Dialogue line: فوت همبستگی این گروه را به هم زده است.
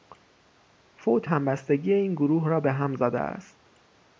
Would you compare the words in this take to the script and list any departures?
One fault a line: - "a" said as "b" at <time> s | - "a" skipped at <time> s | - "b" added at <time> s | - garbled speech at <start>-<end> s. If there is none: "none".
none